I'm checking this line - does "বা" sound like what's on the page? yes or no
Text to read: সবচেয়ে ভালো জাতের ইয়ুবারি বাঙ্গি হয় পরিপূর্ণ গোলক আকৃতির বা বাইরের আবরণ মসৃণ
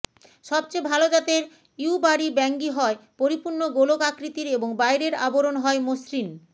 no